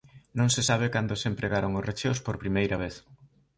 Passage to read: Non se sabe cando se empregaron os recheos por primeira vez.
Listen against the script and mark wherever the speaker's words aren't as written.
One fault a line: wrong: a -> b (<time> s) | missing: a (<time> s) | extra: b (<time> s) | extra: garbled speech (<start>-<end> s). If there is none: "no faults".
no faults